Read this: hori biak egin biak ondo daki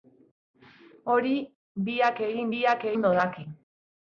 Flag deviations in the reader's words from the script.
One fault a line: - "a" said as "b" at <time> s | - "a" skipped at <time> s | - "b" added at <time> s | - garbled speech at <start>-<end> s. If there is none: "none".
none